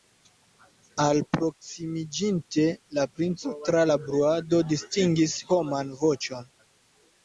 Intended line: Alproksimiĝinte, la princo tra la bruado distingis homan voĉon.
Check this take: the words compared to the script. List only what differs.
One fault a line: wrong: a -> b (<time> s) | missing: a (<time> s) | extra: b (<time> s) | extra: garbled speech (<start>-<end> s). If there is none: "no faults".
no faults